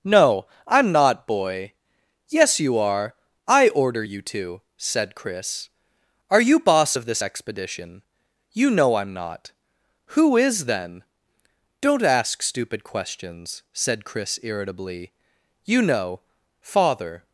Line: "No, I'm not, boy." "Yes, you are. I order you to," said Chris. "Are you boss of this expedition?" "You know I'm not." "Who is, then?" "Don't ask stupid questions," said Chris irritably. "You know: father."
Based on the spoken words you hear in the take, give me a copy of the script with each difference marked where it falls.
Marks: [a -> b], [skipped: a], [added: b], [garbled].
"No, I'm not, boy." "Yes, you are. I order you to," said Chris. "Are you boss of this expedition?" "You know I'm not." "Who is, then?" "Don't ask stupid questions," said Chris irritably. "You know: father."